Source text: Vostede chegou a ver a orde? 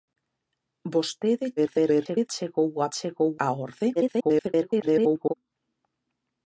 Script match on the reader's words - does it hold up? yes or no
no